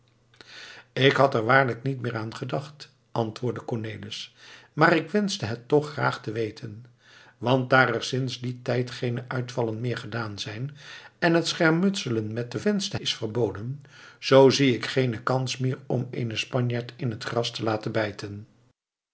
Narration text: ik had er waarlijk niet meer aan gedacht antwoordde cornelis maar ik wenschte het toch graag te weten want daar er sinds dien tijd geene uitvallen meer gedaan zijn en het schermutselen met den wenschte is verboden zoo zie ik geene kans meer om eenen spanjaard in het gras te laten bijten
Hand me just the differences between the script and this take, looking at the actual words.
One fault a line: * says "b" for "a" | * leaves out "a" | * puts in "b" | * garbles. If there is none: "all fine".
all fine